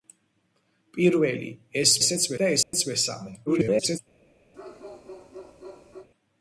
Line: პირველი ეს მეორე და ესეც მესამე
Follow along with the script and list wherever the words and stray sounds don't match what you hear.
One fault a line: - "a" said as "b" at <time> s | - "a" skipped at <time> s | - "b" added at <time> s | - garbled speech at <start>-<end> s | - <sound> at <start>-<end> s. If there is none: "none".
- "მეორე" said as "ესეც" at 2.0 s
- dropout at 2.6-2.7 s
- garbled speech at 3.5-4.0 s
- bark at 4.5-6.1 s